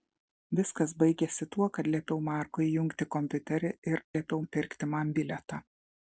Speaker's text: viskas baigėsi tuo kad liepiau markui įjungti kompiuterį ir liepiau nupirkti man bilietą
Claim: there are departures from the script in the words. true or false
false